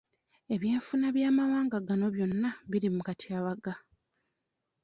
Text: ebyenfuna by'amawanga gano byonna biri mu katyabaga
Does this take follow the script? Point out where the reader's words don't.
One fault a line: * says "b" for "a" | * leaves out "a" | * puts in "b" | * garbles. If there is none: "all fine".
all fine